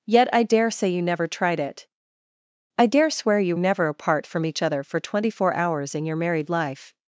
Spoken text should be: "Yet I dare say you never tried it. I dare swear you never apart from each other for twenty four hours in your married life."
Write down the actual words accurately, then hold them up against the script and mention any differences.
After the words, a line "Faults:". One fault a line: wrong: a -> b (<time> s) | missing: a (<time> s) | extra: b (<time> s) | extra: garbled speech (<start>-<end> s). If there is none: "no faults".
"Yet I dare say you never tried it. I dare swear you never apart from each other for twenty four hours in your married life."
Faults:
no faults